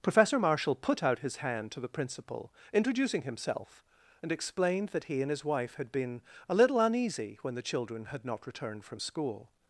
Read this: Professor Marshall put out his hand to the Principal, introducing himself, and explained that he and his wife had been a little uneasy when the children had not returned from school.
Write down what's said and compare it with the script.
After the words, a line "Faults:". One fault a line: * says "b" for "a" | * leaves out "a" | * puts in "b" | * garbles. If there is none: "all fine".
Professor Marshall put out his hand to the Principal, introducing himself, and explained that he and his wife had been a little uneasy when the children had not returned from school.
Faults:
all fine